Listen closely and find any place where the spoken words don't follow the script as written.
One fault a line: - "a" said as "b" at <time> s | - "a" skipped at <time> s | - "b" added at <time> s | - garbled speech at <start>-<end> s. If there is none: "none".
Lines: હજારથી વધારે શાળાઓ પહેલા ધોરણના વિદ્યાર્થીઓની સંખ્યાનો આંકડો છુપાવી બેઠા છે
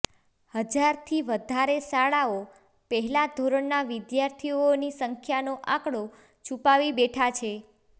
none